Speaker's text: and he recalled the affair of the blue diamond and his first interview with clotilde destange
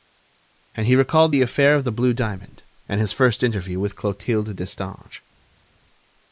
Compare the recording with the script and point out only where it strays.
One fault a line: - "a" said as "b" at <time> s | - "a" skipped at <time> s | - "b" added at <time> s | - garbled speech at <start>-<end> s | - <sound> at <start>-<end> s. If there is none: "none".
none